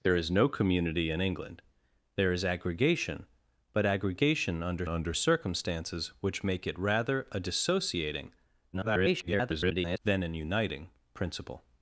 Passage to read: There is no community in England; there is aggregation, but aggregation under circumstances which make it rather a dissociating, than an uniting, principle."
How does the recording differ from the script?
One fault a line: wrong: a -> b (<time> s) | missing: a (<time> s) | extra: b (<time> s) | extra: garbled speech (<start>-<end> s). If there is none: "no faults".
extra: under (4.9 s)
extra: garbled speech (8.7-10.0 s)